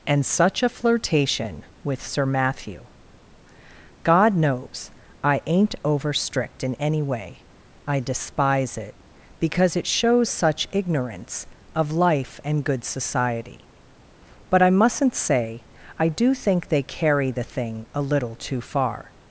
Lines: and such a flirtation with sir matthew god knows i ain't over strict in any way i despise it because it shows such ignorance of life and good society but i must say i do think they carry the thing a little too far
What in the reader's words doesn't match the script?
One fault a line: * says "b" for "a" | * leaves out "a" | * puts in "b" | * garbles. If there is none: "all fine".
* says "mustn't" for "must"